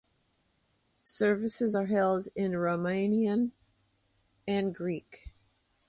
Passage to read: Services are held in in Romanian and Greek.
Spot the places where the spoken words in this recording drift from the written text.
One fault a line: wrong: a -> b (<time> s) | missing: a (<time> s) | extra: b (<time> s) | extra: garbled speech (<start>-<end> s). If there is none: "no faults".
missing: in (2.5 s)